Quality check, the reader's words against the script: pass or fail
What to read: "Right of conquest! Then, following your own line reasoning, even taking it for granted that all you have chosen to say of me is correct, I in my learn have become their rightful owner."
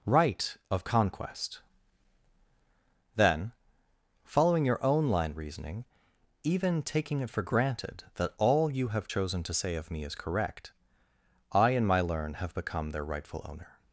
pass